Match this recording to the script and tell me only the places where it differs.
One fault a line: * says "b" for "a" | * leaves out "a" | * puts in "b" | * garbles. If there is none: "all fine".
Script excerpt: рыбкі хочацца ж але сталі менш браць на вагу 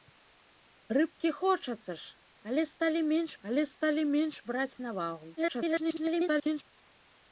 * puts in "але сталі менш"
* garbles